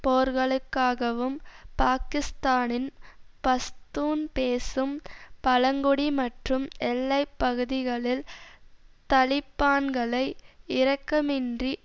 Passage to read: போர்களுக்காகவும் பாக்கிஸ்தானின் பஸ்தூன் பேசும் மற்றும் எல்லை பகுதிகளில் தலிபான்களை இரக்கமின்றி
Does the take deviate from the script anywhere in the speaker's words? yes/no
yes